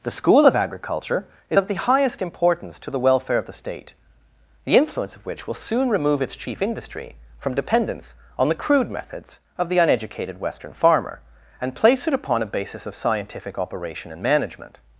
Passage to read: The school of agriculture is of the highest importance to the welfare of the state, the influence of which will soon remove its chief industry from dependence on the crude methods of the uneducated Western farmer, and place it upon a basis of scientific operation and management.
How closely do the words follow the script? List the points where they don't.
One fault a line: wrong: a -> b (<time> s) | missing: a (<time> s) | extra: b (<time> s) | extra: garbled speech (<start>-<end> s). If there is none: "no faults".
no faults